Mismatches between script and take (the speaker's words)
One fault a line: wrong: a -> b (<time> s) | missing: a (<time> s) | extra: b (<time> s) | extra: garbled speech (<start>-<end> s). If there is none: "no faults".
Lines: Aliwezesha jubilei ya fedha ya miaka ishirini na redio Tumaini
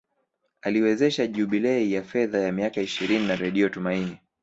no faults